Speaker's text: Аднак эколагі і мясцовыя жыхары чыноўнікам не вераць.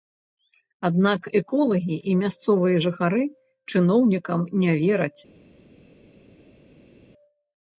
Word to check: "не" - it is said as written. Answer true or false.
true